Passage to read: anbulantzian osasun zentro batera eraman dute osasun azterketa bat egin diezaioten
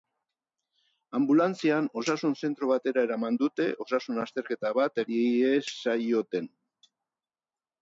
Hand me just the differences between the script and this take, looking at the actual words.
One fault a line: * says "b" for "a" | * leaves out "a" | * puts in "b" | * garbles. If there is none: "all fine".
* leaves out "egin"